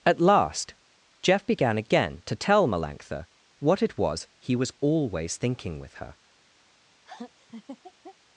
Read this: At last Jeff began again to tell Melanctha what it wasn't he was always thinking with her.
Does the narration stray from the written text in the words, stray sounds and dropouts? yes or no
yes